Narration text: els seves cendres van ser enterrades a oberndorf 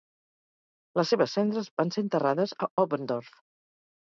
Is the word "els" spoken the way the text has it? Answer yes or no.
no